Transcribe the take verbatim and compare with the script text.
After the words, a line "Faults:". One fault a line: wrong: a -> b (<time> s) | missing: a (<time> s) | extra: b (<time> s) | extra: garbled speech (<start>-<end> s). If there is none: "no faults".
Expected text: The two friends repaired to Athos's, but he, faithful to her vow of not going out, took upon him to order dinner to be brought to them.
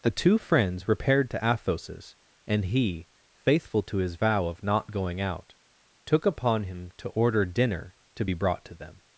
The two friends repaired to Athos's, and he, faithful to his vow of not going out, took upon him to order dinner to be brought to them.
Faults:
wrong: but -> and (2.5 s)
wrong: her -> his (4.0 s)